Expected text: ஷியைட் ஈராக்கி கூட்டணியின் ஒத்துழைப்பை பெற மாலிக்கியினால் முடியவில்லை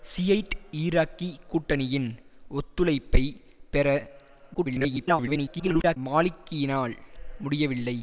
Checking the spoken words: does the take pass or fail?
fail